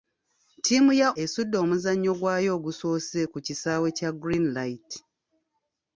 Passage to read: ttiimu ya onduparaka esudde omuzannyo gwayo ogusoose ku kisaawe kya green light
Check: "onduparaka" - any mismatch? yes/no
yes